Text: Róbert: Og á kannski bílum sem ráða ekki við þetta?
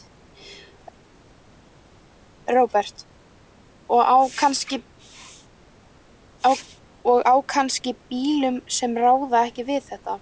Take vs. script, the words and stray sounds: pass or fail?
pass